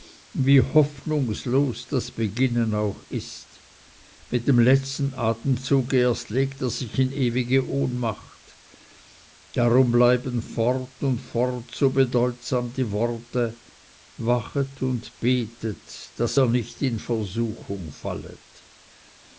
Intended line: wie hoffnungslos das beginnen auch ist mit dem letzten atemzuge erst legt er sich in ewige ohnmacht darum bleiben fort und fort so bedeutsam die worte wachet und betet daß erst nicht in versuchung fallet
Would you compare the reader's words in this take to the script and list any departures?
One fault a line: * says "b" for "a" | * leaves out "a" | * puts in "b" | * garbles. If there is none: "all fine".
* says "ihr" for "erst"